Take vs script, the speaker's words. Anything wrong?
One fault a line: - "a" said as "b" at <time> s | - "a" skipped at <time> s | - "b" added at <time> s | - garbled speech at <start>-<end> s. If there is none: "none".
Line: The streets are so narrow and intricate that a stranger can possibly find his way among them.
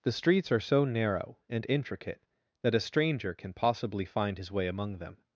none